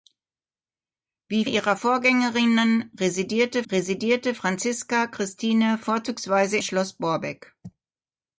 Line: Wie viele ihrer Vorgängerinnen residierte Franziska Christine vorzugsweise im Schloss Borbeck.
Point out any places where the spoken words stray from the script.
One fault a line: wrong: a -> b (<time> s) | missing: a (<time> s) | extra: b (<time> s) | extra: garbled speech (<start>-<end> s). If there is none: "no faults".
missing: viele (1.4 s)
extra: residierte (3.7 s)
missing: im (6.6 s)